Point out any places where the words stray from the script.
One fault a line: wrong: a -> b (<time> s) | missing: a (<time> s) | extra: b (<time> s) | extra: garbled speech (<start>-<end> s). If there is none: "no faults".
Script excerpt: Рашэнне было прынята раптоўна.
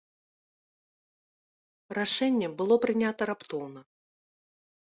no faults